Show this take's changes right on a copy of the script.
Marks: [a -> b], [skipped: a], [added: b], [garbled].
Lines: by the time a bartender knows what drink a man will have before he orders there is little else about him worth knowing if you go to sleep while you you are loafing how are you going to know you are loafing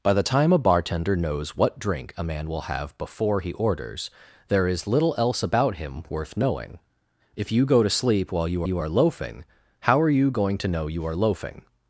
by the time a bartender knows what drink a man will have before he orders there is little else about him worth knowing if you go to sleep while you you are loafing how are you going to know you are loafing